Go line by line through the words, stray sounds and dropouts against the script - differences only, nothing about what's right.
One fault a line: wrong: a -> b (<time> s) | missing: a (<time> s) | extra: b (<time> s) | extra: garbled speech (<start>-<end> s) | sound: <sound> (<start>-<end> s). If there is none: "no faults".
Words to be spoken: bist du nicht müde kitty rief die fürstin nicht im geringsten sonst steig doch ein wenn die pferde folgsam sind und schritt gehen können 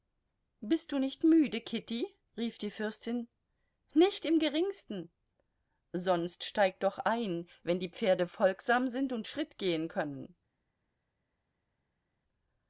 no faults